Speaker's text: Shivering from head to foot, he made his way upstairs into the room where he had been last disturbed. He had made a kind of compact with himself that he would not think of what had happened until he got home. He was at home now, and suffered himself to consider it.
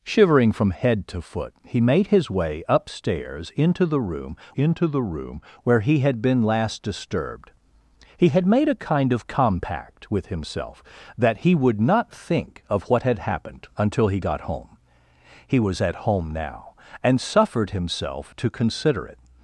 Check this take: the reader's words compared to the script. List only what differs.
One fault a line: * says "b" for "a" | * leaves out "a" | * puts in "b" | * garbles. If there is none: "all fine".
* puts in "into the room"